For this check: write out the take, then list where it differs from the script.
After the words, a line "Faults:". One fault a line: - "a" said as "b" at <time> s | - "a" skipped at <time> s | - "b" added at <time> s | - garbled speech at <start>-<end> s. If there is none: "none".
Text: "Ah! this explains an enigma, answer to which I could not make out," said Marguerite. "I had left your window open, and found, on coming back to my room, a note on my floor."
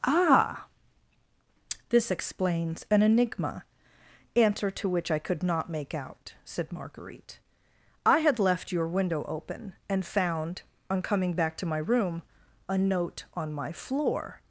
"Ah! this explains an enigma, answer to which I could not make out," said Marguerite. "I had left your window open, and found, on coming back to my room, a note on my floor."
Faults:
none